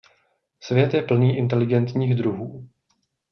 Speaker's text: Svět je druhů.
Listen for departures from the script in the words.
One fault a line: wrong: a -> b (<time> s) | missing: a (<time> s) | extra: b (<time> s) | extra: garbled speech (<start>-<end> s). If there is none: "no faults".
extra: plný inteligentních (1.0 s)